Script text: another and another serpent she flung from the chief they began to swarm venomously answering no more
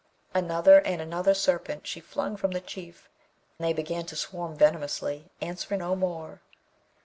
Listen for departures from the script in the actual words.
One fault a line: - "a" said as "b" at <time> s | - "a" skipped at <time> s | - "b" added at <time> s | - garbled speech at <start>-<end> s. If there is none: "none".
none